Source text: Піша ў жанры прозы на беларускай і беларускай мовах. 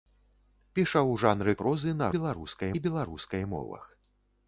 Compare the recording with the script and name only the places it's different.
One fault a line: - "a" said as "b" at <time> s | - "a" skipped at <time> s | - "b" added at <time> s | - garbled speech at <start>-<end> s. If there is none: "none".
none